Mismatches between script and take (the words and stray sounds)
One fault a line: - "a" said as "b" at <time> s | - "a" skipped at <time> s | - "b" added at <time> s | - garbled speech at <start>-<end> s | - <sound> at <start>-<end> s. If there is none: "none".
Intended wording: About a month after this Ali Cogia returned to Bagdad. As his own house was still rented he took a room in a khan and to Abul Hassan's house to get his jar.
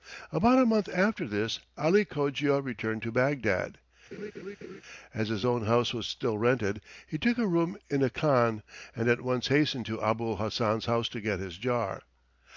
- laugh at 4.1-4.8 s
- "at once hastened" added at 9.1 s